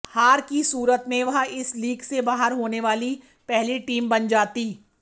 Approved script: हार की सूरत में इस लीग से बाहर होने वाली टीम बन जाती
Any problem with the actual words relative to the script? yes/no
yes